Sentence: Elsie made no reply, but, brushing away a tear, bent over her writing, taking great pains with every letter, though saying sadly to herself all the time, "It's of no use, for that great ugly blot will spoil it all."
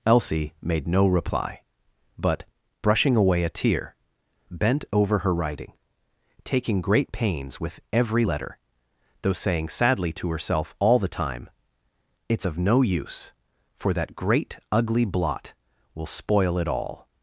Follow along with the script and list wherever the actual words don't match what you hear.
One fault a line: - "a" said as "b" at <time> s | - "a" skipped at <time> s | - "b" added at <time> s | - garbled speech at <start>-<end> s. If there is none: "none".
none